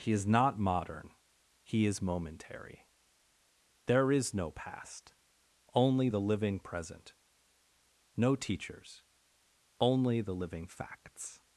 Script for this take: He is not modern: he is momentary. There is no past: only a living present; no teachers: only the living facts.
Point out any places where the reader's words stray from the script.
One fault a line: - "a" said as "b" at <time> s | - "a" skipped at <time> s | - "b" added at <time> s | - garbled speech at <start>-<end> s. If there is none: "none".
- "a" said as "the" at 6.1 s